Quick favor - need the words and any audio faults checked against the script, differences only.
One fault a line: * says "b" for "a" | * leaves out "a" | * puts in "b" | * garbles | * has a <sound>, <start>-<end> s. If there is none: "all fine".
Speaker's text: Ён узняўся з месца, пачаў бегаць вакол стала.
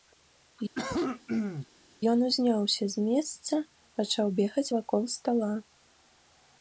* has a cough, 0.7-1.7 s